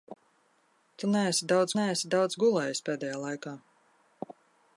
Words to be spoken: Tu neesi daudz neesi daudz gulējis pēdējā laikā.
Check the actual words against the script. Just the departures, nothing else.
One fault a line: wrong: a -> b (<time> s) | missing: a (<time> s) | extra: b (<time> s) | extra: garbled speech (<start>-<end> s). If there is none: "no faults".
no faults